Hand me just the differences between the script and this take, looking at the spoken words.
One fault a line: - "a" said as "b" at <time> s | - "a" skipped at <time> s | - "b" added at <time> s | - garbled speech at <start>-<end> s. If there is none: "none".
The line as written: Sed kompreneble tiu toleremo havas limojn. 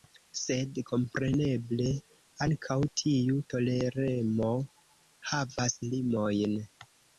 - "ankaŭ" added at 2.5 s